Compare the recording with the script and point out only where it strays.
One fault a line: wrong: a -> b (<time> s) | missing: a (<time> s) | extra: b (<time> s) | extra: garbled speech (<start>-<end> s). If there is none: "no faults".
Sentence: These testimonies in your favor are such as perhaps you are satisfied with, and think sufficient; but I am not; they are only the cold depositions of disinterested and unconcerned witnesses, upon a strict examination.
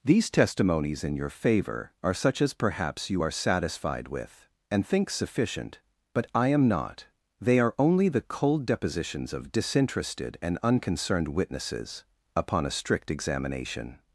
no faults